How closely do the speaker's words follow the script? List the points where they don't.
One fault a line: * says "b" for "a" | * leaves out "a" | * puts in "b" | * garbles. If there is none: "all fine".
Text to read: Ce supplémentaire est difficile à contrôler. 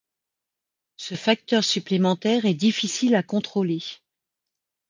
* puts in "facteur"